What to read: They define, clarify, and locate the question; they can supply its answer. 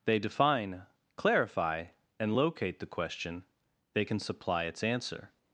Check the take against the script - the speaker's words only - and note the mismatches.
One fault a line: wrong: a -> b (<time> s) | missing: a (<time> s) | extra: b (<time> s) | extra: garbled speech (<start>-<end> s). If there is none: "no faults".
no faults